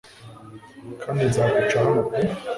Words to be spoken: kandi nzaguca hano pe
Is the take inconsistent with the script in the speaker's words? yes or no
no